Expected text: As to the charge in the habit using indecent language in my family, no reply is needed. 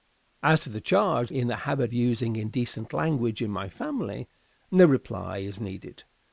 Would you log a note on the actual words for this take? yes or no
no